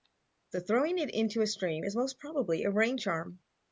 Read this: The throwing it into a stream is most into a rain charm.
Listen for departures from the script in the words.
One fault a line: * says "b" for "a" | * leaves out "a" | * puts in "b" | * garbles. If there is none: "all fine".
* says "probably" for "into"